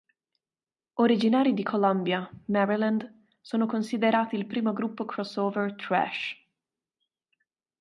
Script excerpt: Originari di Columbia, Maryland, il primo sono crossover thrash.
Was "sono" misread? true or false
true